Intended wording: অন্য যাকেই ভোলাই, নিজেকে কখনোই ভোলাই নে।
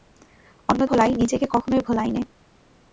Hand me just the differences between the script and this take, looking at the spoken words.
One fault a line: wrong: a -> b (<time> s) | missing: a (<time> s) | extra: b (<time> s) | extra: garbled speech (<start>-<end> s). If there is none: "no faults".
missing: যাকেই (0.8 s)